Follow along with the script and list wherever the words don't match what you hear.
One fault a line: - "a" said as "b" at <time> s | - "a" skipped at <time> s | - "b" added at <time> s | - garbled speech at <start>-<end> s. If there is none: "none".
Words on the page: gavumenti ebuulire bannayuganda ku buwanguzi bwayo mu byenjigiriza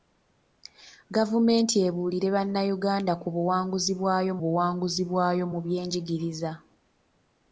- "buwanguzi bwayo" added at 4.4 s